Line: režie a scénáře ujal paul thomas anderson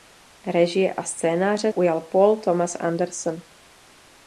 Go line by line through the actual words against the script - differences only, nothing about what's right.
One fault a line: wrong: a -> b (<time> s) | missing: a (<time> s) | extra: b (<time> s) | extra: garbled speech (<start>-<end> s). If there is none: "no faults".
no faults